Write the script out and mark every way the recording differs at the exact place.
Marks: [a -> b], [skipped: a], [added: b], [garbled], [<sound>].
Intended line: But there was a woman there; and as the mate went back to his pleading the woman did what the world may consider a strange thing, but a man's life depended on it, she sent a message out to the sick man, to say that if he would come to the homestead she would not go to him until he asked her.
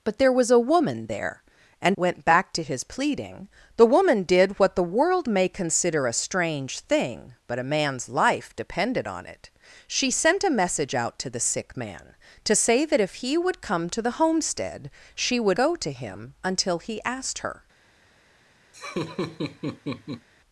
But there was a woman there; and [skipped: as the mate] went back to his pleading the woman did what the world may consider a strange thing, but a man's life depended on it, she sent a message out to the sick man, to say that if he would come to the homestead she would [skipped: not] go to him until he asked her. [laugh]